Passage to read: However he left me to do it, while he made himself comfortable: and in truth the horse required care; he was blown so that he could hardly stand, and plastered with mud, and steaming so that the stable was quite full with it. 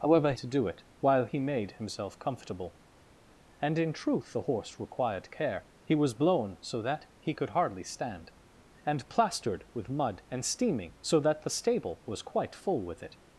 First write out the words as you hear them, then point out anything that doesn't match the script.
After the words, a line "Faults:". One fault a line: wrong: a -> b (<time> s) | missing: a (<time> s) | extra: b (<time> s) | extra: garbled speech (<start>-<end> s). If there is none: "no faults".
However to do it, while he made himself comfortable: and in truth the horse required care; he was blown so that he could hardly stand, and plastered with mud, and steaming so that the stable was quite full with it.
Faults:
missing: he left me (0.3 s)